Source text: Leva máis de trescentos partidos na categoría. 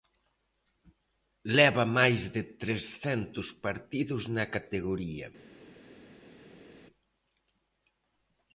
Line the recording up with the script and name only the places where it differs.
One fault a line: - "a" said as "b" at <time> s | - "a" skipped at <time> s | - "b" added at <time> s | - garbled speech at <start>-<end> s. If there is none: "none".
none